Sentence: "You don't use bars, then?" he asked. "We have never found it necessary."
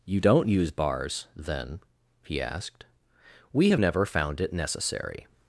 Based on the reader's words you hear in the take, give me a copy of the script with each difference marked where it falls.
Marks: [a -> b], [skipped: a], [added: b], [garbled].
"You don't use bars, then?" he asked. "We have never found it necessary."